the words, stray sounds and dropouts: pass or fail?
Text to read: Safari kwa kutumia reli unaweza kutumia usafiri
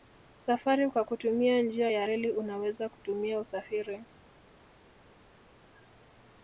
fail